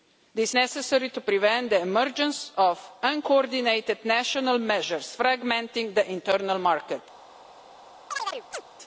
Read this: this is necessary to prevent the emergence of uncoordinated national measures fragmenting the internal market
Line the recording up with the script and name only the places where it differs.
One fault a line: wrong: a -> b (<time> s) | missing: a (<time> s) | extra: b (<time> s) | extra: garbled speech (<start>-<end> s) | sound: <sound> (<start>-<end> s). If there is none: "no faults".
missing: is (0.6 s)
sound: chirp (8.1-8.6 s)